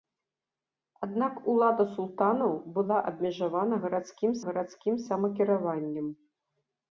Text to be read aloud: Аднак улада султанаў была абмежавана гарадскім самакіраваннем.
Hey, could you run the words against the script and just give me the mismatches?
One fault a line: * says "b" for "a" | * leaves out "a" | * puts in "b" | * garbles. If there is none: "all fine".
* puts in "гарадскім"